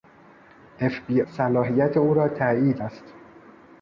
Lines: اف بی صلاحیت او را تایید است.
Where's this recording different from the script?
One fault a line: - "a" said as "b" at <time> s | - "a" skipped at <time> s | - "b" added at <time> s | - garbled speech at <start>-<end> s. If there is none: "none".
none